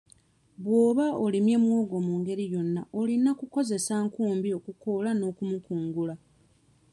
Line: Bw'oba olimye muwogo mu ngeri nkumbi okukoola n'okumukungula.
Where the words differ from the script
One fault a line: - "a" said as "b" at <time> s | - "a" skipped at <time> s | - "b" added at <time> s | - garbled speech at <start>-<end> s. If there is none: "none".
- "yonna olina kukozesa" added at 2.5 s